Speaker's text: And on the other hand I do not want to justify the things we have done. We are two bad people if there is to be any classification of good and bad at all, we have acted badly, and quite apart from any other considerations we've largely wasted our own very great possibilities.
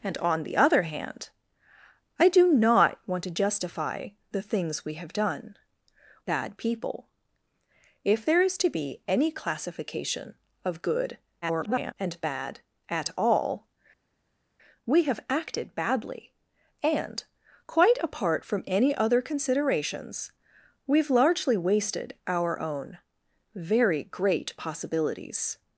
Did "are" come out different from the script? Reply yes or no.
yes